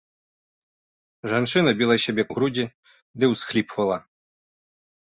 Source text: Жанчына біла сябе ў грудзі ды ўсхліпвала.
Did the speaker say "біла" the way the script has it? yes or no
yes